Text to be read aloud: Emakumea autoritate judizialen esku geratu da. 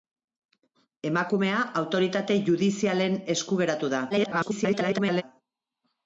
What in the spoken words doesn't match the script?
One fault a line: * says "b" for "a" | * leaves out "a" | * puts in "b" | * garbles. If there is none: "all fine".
* garbles